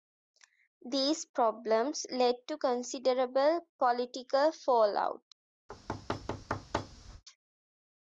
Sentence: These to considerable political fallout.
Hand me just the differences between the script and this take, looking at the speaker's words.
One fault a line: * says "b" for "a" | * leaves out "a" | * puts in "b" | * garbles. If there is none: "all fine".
* puts in "problems led"